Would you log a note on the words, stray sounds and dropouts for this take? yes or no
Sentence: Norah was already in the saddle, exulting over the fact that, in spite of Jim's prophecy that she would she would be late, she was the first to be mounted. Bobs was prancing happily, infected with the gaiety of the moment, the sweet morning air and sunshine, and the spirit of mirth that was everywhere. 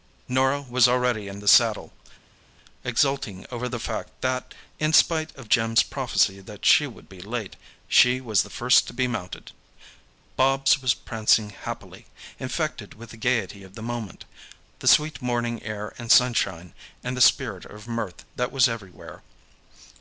yes